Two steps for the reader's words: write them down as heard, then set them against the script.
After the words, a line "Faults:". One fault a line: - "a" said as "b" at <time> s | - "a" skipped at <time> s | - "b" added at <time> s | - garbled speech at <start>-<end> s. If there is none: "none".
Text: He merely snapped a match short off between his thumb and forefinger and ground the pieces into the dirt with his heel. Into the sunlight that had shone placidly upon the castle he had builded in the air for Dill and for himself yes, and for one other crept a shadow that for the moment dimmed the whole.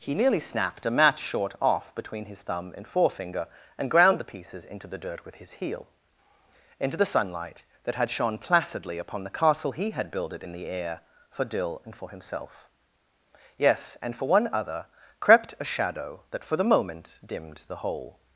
He nearly snapped a match short off between his thumb and forefinger and ground the pieces into the dirt with his heel. Into the sunlight that had shone placidly upon the castle he had builded in the air for Dill and for himself yes, and for one other crept a shadow that for the moment dimmed the whole.
Faults:
- "merely" said as "nearly" at 0.1 s